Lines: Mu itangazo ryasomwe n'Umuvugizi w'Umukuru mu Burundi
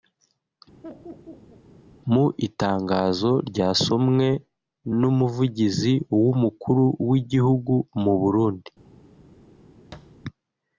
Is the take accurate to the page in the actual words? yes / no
no